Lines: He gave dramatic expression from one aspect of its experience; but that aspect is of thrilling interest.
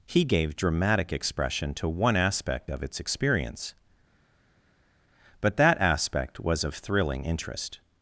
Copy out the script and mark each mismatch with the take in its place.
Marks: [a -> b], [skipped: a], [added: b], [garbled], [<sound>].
He gave dramatic expression [from -> to] one aspect of its experience; but that aspect [is -> was] of thrilling interest.